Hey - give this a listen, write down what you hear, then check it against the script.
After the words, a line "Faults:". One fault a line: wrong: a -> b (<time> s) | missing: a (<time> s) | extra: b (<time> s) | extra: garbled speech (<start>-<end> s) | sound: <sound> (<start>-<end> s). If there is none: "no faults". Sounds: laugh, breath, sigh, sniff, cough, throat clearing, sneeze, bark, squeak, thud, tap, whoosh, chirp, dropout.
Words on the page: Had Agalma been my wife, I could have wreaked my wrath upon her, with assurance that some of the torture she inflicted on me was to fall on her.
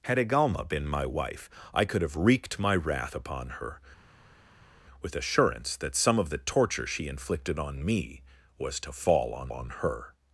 Had Agalma been my wife, I could have wreaked my wrath upon her, with assurance that some of the torture she inflicted on me was to fall on on her.
Faults:
extra: on (9.5 s)